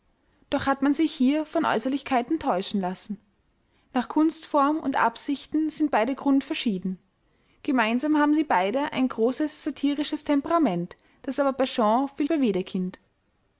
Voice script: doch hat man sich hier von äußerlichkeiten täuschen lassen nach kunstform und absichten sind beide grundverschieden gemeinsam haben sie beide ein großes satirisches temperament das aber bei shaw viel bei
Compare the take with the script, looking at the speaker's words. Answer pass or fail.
pass